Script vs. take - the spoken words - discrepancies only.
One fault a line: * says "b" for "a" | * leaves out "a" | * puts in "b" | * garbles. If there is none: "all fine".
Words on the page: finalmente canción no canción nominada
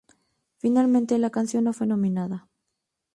* puts in "la"
* says "fue" for "canción"